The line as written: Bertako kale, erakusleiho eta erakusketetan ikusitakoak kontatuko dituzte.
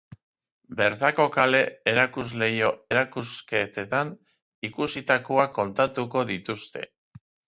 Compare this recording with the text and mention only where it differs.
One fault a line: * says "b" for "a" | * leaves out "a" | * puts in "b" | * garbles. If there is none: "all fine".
* leaves out "eta"